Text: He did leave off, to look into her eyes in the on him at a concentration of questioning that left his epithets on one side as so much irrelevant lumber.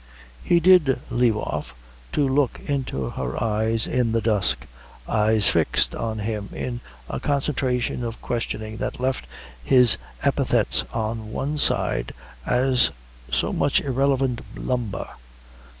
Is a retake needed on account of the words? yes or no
yes